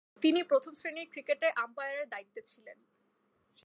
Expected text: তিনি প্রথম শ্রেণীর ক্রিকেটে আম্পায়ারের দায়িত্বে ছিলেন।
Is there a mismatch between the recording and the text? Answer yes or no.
no